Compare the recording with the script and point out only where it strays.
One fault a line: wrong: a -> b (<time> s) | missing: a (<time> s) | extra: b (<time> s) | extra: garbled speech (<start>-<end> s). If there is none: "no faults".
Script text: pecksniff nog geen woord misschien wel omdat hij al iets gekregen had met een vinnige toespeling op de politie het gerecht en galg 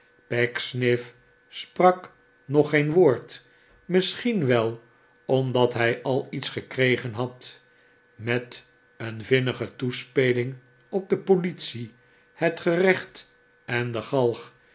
extra: sprak (1.5 s)
extra: de (13.9 s)